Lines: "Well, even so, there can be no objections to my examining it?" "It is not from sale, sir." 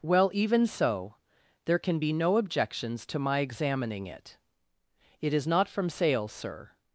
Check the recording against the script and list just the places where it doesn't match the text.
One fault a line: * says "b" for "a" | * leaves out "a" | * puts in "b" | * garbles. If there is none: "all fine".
all fine